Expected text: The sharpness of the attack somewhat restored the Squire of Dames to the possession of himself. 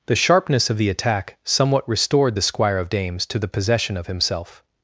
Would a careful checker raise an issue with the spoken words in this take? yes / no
no